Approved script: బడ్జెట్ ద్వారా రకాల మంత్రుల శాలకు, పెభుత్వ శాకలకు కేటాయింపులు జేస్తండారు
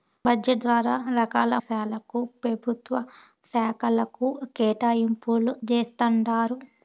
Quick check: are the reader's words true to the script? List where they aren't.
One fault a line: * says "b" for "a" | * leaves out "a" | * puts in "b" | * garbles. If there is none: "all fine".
* leaves out "మంత్రుల"